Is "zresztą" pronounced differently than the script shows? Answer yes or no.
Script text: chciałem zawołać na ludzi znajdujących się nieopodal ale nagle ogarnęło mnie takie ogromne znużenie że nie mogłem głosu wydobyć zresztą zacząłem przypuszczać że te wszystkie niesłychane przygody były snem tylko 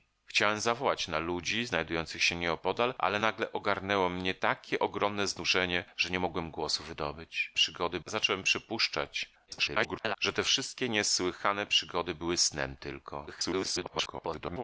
yes